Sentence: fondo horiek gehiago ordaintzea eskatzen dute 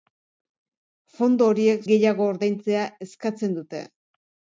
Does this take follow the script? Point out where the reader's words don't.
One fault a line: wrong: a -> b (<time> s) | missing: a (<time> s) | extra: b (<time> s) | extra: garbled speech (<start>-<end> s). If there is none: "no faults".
no faults